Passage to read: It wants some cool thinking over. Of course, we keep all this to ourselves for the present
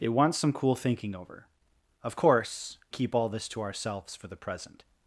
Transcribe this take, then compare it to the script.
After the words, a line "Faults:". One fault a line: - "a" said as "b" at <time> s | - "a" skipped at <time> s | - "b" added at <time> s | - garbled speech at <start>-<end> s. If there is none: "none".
It wants some cool thinking over. Of course, keep all this to ourselves for the present
Faults:
- "we" skipped at 2.8 s